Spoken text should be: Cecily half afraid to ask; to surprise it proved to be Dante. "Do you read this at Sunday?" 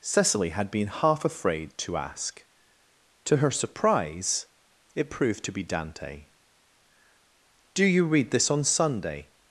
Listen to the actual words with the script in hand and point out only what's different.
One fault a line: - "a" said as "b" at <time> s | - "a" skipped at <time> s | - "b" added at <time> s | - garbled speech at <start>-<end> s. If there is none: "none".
- "had been" added at 0.5 s
- "her" added at 3.4 s
- "at" said as "on" at 8.5 s